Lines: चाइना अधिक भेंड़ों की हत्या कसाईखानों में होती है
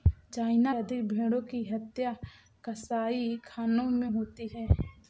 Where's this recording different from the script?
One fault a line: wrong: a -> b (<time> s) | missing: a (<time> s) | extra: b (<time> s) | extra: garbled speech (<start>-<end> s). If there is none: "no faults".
no faults